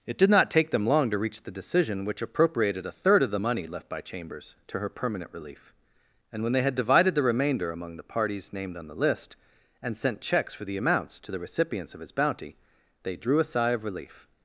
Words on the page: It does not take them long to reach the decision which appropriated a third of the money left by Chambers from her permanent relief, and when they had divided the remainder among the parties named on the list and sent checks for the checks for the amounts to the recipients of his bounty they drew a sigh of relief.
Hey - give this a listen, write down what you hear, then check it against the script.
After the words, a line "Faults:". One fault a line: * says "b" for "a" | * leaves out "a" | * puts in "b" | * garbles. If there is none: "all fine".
It did not take them long to reach the decision which appropriated a third of the money left by Chambers to her permanent relief, and when they had divided the remainder among the parties named on the list and sent checks for the amounts to the recipients of his bounty they drew a sigh of relief.
Faults:
* says "did" for "does"
* says "to" for "from"
* leaves out "checks for the"